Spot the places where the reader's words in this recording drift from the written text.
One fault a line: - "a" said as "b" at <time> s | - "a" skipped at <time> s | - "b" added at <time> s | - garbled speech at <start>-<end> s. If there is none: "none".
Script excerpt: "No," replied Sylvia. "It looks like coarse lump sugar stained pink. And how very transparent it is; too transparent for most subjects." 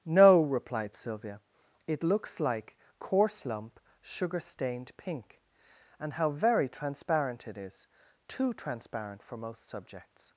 none